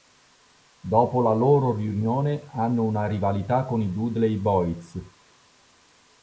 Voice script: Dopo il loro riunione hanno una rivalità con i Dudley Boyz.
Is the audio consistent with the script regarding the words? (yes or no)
no